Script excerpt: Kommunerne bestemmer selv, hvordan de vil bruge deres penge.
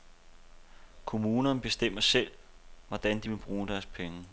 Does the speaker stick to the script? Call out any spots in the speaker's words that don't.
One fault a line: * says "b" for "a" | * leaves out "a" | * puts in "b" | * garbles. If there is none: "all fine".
all fine